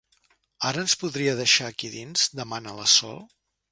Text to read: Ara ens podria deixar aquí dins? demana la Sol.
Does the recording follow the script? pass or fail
pass